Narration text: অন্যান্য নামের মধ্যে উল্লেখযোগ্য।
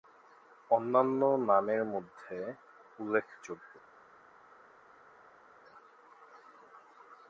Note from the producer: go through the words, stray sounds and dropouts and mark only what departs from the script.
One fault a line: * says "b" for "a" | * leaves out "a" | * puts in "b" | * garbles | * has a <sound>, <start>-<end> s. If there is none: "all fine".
all fine